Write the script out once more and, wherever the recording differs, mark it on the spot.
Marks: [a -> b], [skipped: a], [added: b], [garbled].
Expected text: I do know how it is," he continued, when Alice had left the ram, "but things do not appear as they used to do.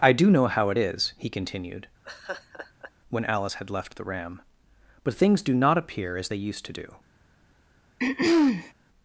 I do know how it is," he continued, when Alice had left the ram, "but things do not appear as they used to do.